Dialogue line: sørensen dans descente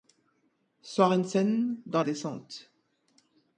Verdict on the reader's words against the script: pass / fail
pass